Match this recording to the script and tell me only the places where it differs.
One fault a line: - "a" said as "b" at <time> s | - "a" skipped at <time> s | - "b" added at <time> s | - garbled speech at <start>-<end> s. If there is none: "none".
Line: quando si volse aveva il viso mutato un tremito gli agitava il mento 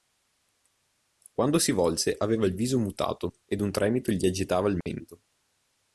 - "ed" added at 3.5 s